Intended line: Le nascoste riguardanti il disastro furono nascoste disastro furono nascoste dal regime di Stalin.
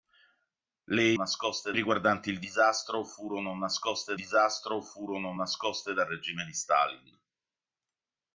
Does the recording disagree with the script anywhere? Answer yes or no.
no